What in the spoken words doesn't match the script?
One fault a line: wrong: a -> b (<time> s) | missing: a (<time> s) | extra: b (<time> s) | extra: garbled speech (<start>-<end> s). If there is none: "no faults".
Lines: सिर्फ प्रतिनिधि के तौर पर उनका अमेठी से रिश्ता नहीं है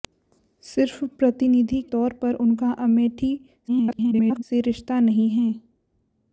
missing: के (1.8 s)
extra: garbled speech (3.7-4.4 s)